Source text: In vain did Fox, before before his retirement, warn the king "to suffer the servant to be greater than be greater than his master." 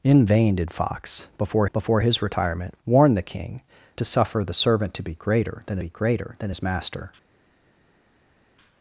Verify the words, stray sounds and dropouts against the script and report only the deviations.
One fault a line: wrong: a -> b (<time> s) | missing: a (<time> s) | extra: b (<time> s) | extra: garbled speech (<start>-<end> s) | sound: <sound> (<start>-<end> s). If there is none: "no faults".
no faults